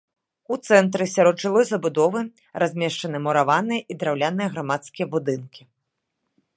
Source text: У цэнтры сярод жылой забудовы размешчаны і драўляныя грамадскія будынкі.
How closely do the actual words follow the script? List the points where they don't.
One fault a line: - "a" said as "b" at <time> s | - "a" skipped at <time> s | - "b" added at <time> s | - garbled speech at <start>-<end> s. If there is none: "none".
- "мураваныя" added at 3.3 s